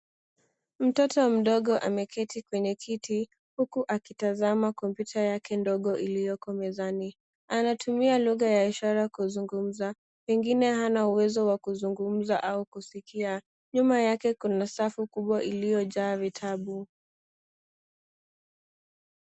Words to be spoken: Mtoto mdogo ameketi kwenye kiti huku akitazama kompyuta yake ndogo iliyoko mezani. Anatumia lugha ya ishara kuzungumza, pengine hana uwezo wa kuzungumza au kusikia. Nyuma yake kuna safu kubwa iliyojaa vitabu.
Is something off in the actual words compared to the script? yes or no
no